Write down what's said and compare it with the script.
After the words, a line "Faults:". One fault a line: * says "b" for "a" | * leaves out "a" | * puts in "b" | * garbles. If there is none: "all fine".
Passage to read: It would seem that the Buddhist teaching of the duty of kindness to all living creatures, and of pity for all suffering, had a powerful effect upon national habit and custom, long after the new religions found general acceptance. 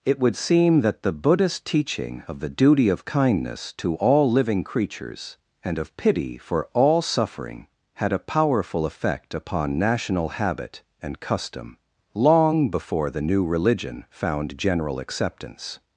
It would seem that the Buddhist teaching of the duty of kindness to all living creatures, and of pity for all suffering, had a powerful effect upon national habit and custom, long before the new religion found general acceptance.
Faults:
* says "before" for "after"
* says "religion" for "religions"